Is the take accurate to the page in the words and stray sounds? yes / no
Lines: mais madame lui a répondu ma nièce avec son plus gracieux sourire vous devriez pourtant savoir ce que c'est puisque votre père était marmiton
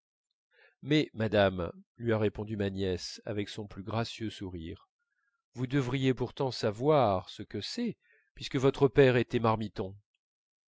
yes